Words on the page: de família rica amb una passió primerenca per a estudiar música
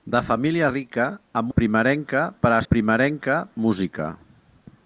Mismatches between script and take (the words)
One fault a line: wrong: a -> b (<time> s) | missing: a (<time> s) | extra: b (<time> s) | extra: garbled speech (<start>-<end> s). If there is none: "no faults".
missing: una passió (1.5 s)
wrong: estudiar -> primerenca (2.7 s)